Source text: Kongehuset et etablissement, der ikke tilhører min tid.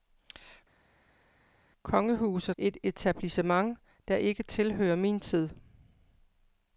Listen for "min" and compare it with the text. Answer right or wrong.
right